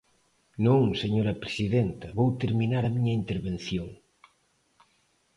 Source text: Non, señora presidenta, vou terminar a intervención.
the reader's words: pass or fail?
fail